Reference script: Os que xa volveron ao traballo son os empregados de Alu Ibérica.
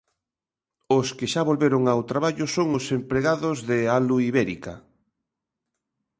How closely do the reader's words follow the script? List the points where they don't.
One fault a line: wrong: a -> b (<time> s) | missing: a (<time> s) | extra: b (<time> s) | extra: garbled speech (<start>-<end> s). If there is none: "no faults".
no faults